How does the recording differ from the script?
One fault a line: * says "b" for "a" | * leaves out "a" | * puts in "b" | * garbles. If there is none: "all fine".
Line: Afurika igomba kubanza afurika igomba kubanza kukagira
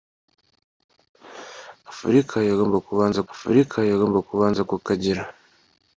all fine